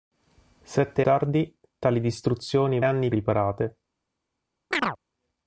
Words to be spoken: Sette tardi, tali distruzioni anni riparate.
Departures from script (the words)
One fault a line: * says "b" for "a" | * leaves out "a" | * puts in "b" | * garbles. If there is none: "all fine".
all fine